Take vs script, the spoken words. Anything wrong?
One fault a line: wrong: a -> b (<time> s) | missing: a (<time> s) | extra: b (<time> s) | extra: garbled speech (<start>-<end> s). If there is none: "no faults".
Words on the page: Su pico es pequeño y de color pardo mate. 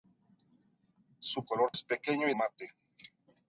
wrong: pico -> color (1.4 s)
missing: de color pardo (2.3 s)